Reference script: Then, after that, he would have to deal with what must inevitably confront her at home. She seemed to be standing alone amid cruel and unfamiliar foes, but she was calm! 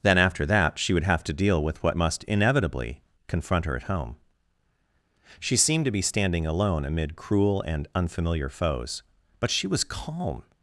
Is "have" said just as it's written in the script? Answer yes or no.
yes